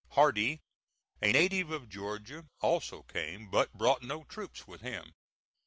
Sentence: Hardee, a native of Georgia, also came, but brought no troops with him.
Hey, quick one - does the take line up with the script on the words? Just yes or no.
yes